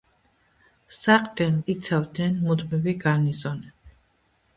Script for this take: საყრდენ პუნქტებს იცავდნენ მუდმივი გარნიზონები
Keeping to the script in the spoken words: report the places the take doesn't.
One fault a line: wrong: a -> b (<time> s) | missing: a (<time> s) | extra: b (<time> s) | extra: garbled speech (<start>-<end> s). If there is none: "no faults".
missing: პუნქტებს (1.6 s)